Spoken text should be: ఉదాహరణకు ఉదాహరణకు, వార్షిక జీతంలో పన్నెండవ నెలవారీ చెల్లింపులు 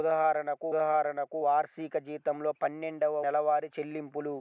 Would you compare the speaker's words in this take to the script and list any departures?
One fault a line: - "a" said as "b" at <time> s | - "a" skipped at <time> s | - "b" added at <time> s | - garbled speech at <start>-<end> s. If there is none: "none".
none